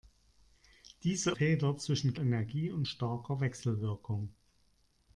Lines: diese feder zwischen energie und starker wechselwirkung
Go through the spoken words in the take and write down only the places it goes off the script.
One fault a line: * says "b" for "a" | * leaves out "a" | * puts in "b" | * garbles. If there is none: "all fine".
all fine